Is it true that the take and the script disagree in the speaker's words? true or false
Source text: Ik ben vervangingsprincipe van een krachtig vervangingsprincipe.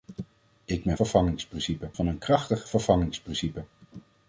false